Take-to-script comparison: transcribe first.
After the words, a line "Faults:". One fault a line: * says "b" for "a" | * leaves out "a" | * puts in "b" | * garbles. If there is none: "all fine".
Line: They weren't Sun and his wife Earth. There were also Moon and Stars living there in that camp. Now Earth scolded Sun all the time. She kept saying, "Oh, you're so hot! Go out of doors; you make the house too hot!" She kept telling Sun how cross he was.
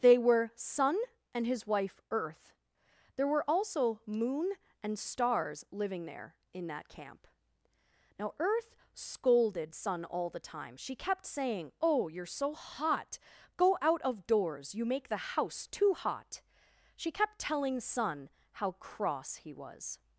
They were Sun and his wife Earth. There were also Moon and Stars living there in that camp. Now Earth scolded Sun all the time. She kept saying, "Oh, you're so hot! Go out of doors; you make the house too hot!" She kept telling Sun how cross he was.
Faults:
* says "were" for "weren't"